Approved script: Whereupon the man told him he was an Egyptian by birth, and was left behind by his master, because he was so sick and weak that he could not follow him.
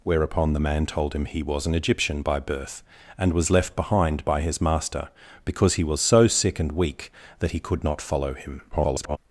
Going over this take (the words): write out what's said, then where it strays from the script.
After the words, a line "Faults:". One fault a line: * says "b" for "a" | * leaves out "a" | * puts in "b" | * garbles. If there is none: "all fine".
Whereupon the man told him he was an Egyptian by birth, and was left behind by his master, because he was so sick and weak that he could not follow him. [garbled]
Faults:
* garbles